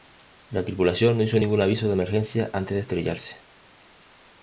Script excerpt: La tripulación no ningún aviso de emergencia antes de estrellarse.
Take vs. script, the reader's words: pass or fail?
fail